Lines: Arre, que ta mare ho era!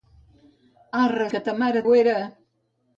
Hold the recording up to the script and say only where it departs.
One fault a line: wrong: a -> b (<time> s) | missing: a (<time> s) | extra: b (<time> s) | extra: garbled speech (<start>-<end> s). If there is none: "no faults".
no faults